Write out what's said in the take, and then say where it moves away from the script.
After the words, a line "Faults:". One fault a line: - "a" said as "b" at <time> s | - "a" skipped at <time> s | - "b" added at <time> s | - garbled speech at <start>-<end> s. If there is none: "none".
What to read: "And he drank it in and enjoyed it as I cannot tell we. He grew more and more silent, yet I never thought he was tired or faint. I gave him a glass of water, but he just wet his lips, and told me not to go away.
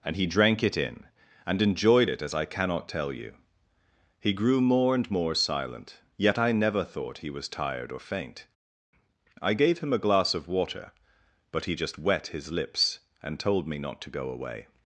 "And he drank it in and enjoyed it as I cannot tell you. He grew more and more silent, yet I never thought he was tired or faint. I gave him a glass of water, but he just wet his lips, and told me not to go away.
Faults:
- "we" said as "you" at 3.1 s